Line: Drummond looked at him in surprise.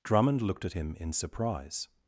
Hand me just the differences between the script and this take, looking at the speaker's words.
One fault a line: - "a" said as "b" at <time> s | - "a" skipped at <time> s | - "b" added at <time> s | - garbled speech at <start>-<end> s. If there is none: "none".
none